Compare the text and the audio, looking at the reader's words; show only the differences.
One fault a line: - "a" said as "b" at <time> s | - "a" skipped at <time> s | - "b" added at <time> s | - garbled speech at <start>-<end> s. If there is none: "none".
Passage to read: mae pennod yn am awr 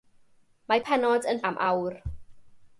none